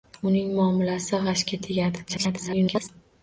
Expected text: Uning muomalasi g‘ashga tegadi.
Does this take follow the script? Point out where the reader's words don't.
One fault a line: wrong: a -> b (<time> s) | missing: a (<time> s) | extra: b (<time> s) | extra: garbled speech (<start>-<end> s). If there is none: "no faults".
extra: garbled speech (2.1-2.9 s)